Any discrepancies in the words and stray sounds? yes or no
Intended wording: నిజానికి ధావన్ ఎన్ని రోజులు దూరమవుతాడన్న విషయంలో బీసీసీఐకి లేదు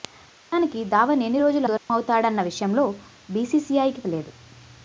yes